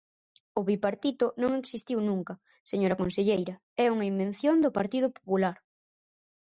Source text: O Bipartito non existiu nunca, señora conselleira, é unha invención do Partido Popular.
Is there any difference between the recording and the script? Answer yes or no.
no